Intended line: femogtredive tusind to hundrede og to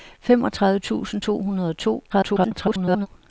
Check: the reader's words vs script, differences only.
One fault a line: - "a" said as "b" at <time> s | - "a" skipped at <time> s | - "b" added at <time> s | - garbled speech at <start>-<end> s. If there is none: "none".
- garbled speech at 2.1-3.1 s